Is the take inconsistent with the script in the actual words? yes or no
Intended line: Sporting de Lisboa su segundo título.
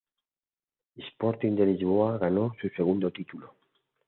yes